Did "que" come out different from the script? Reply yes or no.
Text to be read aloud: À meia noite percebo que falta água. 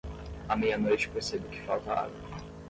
no